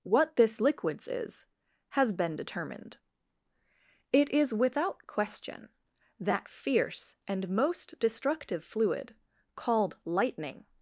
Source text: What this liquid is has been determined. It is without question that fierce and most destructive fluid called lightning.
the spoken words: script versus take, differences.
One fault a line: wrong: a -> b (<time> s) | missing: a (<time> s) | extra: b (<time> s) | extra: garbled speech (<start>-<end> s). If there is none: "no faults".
wrong: liquid -> liquids (0.6 s)